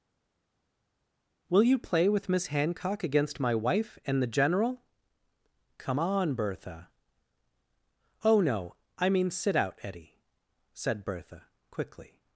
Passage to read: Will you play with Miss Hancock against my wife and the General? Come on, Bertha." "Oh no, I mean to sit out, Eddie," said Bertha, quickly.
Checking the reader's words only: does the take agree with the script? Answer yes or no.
no